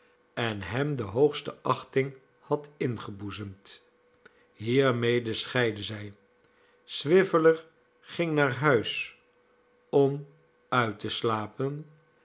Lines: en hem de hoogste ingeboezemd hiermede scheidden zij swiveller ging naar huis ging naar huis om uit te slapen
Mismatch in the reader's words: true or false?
true